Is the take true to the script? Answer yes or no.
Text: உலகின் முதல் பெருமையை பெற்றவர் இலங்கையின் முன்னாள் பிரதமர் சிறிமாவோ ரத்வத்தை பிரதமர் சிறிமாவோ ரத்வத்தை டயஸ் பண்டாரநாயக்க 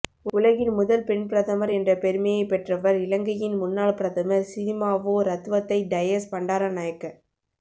no